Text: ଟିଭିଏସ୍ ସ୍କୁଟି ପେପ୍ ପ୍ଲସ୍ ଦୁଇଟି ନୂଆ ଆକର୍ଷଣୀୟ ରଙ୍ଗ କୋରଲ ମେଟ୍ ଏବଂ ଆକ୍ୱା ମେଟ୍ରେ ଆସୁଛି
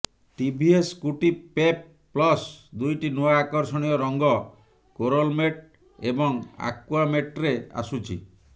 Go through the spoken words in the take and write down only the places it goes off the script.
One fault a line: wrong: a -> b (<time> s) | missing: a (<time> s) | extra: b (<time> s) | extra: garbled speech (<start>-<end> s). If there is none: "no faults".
no faults